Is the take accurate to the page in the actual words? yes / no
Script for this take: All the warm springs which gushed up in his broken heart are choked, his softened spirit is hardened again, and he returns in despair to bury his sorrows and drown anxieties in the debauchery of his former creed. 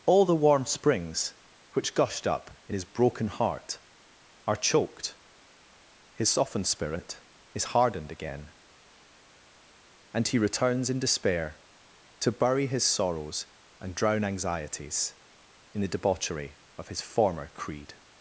yes